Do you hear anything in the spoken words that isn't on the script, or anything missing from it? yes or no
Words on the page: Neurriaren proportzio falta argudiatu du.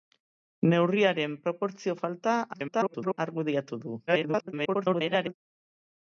yes